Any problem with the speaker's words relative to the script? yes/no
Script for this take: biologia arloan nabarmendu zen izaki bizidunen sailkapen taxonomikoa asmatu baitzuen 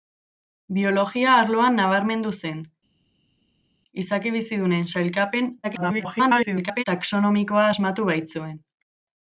yes